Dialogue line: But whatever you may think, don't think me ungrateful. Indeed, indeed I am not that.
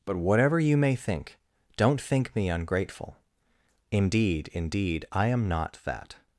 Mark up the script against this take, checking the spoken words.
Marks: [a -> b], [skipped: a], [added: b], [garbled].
But whatever you may think, don't think me ungrateful. Indeed, indeed I am not that.